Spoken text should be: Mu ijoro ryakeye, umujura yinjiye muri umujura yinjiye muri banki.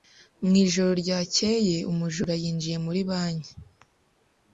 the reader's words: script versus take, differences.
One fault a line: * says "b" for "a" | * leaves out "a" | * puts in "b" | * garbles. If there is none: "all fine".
* leaves out "umujura yinjiye muri"